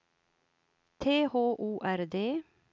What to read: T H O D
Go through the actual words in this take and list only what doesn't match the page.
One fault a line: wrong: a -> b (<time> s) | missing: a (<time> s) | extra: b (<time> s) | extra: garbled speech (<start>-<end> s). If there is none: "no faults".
extra: R (1.8 s)